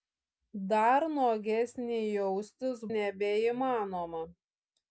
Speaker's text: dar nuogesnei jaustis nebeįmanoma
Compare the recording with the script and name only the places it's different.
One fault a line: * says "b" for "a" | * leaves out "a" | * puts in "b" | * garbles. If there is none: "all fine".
all fine